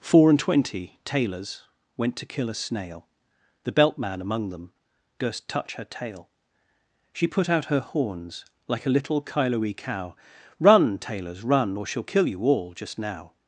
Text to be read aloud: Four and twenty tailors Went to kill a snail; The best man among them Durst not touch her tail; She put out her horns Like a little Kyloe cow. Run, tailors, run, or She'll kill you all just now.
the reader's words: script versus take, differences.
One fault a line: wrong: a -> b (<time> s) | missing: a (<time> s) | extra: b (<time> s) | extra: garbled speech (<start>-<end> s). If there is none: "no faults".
wrong: best -> belt (3.7 s)
missing: not (5.5 s)